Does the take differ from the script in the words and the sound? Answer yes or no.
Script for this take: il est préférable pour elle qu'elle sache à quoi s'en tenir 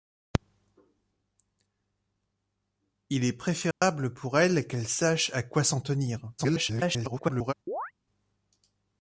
yes